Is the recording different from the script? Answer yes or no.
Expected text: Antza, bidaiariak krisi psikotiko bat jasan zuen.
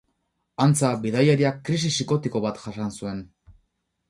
no